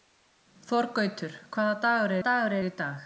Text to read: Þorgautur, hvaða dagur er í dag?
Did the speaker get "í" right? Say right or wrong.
right